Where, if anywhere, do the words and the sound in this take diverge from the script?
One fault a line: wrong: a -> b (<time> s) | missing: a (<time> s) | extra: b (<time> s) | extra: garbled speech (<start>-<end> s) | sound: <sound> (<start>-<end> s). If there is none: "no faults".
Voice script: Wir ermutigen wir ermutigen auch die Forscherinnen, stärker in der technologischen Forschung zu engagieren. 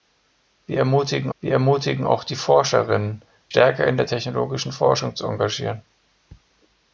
no faults